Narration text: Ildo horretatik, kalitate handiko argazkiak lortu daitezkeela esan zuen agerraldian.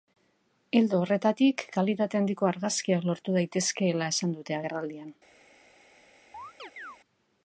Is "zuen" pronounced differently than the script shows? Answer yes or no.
yes